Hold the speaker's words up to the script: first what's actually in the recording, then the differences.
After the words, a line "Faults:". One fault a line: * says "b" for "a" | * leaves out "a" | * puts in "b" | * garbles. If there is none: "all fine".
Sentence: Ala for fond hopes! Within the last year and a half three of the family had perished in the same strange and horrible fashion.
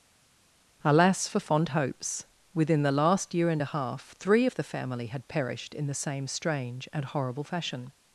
Alas for fond hopes! Within the last year and a half three of the family had perished in the same strange and horrible fashion.
Faults:
* says "Alas" for "Ala"